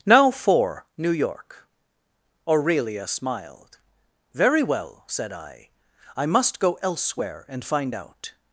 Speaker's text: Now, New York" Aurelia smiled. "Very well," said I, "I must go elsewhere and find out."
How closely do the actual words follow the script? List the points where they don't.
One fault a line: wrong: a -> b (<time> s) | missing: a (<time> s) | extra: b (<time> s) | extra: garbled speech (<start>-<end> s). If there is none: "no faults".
extra: for (0.3 s)